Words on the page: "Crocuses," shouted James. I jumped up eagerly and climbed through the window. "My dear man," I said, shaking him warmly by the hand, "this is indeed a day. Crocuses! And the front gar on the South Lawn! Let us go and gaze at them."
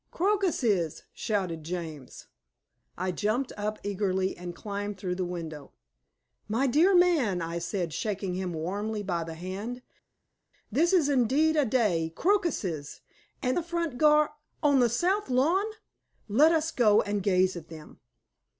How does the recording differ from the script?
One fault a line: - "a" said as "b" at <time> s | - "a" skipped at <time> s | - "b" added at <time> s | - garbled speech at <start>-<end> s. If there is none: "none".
none